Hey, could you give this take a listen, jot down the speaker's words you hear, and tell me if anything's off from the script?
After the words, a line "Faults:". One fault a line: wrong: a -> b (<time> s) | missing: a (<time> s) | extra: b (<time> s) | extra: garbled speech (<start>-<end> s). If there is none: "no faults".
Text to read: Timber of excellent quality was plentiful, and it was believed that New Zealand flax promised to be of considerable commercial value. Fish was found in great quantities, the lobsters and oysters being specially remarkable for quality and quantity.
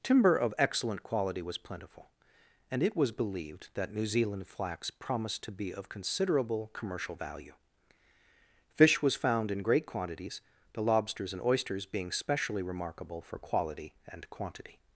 Timber of excellent quality was plentiful, and it was believed that New Zealand flax promised to be of considerable commercial value. Fish was found in great quantities, the lobsters and oysters being specially remarkable for quality and quantity.
Faults:
no faults